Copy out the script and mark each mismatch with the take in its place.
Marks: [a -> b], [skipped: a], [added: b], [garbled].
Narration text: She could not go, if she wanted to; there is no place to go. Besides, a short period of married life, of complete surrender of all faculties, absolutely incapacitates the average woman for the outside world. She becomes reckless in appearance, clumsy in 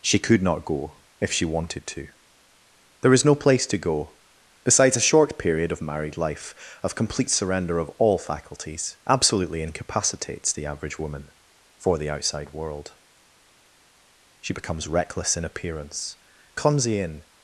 She could not go, if she wanted to; there is no place to go. Besides, a short period of married life, of complete surrender of all faculties, absolutely incapacitates the average woman for the outside world. She becomes reckless in appearance, clumsy in